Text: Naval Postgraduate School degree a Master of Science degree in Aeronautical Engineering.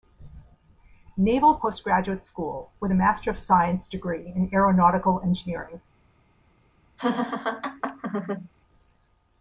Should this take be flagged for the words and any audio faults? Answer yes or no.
yes